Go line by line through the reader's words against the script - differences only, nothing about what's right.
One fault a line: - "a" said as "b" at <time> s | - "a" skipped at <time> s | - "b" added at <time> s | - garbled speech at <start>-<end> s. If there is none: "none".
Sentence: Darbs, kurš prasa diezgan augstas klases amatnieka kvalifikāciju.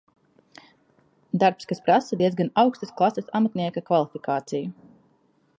- "kurš" said as "kas" at 1.7 s